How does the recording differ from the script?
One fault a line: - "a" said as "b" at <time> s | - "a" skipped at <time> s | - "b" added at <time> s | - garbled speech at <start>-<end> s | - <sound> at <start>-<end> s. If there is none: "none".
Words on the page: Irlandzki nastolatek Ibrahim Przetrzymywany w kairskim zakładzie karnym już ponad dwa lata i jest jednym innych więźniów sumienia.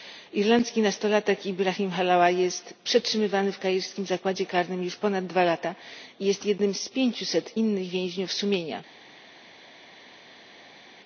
- "Halawa jest" added at 1.9 s
- "z pięciuset" added at 6.7 s